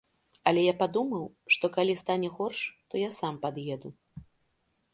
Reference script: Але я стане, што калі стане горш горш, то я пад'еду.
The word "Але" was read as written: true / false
true